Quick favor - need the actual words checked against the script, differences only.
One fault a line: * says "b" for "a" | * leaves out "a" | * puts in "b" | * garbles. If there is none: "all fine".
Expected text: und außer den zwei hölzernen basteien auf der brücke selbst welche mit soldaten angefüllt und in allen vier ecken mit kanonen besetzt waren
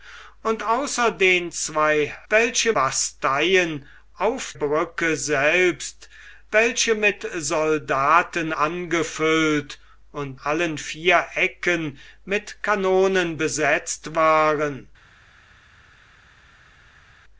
* says "welche" for "hölzernen"
* leaves out "der"
* leaves out "in"